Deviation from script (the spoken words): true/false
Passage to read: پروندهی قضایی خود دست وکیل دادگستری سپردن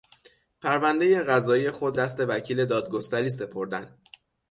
false